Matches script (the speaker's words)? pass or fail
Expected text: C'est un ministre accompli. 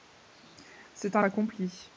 fail